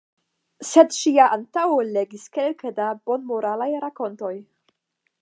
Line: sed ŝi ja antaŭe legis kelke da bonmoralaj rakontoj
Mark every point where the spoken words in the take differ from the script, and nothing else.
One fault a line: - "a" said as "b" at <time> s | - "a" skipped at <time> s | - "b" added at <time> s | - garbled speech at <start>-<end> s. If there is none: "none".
none